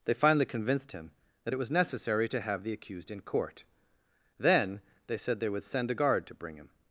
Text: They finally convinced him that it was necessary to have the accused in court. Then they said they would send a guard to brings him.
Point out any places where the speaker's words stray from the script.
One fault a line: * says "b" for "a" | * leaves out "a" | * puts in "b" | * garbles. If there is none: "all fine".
* says "bring" for "brings"